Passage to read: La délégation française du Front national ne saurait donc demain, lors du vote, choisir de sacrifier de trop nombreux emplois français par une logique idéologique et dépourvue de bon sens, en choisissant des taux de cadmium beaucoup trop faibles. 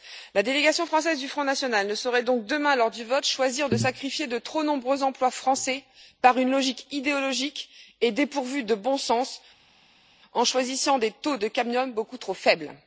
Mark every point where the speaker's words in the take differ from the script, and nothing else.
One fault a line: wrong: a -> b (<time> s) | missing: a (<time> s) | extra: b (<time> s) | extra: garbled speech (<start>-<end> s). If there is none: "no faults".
no faults